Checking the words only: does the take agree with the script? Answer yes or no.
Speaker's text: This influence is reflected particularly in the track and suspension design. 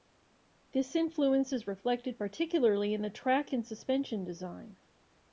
yes